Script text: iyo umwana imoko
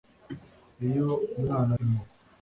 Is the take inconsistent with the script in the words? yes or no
no